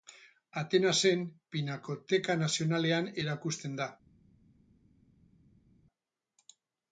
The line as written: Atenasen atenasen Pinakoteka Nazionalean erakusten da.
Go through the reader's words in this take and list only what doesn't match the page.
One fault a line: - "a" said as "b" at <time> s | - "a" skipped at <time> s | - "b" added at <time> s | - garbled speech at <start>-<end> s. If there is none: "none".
- "atenasen" skipped at 1.2 s